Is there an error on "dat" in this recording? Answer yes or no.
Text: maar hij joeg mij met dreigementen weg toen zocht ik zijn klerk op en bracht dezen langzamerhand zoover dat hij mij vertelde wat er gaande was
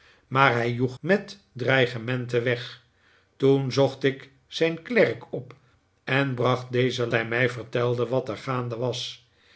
yes